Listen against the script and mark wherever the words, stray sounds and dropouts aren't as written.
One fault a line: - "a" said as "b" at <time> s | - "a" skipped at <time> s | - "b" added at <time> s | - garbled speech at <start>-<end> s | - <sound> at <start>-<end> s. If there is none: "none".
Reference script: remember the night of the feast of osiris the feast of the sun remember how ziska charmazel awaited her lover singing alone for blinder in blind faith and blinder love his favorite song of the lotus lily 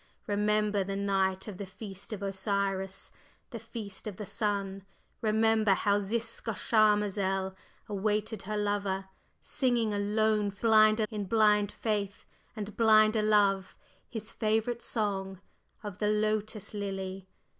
none